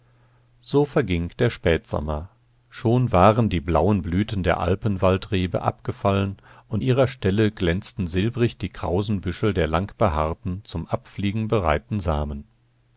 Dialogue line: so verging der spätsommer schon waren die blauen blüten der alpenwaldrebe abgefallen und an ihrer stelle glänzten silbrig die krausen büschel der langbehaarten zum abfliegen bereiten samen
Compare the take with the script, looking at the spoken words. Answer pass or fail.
fail